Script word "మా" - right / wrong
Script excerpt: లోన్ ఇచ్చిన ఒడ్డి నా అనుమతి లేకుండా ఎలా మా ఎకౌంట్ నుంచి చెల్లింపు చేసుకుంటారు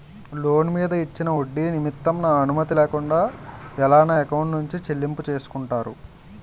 wrong